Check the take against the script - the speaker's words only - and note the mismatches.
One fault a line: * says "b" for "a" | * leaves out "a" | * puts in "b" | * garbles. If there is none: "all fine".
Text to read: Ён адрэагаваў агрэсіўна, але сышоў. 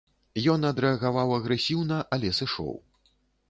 all fine